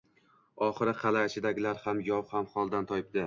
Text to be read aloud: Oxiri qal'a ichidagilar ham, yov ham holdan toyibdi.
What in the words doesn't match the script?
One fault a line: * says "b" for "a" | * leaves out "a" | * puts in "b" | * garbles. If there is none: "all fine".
all fine